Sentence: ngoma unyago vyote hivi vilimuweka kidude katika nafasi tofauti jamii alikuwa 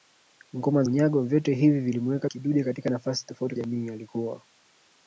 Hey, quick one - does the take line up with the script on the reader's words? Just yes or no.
yes